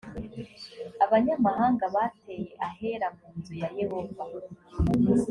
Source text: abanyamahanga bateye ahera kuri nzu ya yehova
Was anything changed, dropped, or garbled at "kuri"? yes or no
yes